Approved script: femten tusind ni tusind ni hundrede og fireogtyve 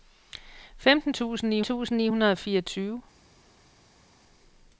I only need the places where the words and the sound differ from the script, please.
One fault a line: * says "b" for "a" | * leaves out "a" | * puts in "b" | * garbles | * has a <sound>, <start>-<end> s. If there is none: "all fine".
all fine